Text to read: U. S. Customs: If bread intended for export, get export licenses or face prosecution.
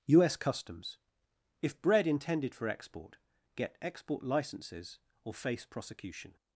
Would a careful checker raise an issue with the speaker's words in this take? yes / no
no